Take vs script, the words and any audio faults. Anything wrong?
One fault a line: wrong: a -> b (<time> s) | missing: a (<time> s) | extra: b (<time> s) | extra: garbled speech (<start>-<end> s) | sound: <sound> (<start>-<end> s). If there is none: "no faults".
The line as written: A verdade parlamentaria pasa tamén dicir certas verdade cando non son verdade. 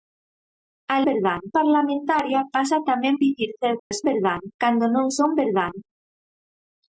sound: dropout (3.8-3.9 s)